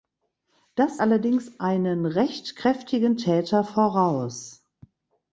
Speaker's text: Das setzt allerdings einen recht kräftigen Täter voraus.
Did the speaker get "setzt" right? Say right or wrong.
wrong